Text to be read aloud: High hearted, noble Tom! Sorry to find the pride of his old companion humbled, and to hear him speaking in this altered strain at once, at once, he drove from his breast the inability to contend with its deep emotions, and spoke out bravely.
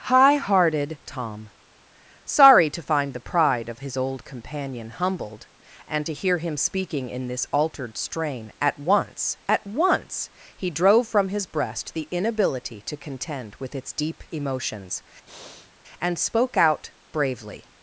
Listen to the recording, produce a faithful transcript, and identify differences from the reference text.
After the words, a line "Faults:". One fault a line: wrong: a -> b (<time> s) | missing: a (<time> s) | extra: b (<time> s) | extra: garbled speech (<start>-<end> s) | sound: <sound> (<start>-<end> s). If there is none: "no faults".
High hearted, Tom! Sorry to find the pride of his old companion humbled, and to hear him speaking in this altered strain at once, at once, he drove from his breast the inability to contend with its deep emotions, and spoke out bravely.
Faults:
missing: noble (1.0 s)
sound: breath (15.3-15.7 s)